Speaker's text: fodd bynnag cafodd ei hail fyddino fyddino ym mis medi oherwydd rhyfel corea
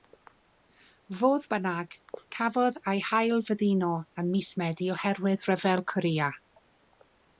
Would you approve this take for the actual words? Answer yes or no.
no